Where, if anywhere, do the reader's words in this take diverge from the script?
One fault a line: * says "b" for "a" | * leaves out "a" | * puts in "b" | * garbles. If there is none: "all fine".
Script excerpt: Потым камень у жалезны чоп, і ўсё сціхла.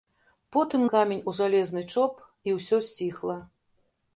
all fine